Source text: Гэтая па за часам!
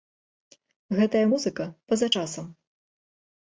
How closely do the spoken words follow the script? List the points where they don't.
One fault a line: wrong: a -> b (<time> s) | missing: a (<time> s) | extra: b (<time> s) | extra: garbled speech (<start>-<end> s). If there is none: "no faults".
extra: музыка (1.3 s)